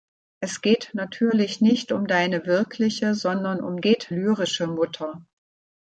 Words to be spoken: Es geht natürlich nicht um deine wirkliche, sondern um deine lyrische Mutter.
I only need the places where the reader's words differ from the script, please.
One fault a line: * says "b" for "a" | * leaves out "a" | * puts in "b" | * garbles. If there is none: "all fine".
* says "geht" for "deine"